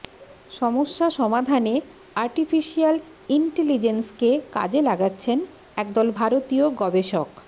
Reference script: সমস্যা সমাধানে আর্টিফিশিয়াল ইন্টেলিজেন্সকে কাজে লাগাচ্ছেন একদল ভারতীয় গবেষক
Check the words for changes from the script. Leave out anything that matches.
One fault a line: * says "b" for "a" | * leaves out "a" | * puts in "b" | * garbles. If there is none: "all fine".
all fine